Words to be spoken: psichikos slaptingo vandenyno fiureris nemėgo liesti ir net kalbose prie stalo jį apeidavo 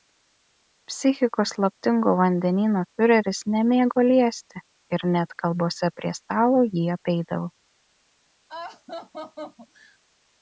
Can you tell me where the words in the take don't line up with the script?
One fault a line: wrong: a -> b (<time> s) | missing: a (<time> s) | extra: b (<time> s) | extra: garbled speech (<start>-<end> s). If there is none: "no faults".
no faults